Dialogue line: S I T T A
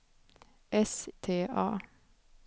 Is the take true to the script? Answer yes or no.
no